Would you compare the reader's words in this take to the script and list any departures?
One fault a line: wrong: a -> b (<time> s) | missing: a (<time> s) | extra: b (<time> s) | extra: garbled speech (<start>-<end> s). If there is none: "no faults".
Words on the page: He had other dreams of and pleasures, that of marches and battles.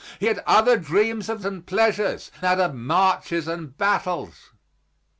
no faults